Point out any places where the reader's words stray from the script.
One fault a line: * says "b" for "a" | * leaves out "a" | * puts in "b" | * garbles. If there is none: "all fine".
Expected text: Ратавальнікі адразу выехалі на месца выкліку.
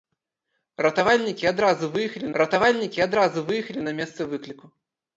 * puts in "ратавальнікі адразу выехалі"